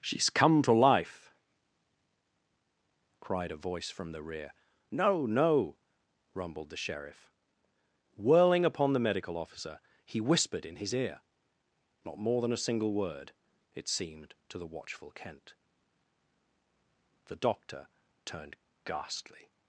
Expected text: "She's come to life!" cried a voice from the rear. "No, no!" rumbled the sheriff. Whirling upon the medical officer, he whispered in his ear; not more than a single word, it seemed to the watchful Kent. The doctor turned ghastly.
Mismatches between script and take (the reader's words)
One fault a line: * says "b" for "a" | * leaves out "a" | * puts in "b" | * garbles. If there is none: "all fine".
all fine